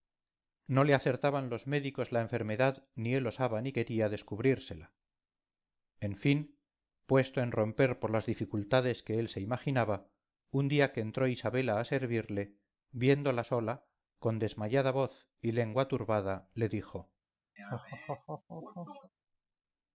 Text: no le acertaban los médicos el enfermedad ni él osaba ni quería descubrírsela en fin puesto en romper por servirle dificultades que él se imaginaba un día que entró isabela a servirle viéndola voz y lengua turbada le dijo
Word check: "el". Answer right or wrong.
wrong